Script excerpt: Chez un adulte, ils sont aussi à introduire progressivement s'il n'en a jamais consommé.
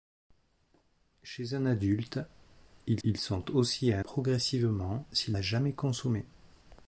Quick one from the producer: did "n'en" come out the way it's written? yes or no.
no